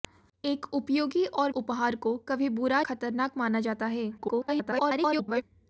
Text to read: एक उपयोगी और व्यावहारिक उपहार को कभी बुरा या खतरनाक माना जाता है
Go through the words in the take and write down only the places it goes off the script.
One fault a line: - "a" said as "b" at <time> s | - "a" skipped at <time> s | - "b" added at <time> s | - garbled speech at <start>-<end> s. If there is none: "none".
- "व्यावहारिक" skipped at 1.5 s
- "या" skipped at 2.8 s
- garbled speech at 4.2-5.4 s